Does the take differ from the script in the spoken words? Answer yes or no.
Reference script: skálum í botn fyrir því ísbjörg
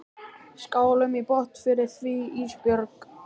no